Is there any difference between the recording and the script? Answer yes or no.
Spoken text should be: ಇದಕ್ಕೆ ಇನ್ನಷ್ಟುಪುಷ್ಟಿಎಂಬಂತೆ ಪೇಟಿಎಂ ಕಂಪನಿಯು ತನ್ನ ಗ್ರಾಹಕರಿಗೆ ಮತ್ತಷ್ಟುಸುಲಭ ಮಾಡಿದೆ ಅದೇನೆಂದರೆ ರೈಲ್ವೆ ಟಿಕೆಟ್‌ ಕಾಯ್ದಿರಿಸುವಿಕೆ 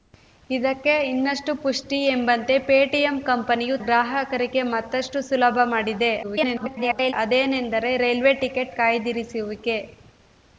yes